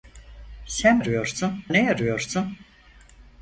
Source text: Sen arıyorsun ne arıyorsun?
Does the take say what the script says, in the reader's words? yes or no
yes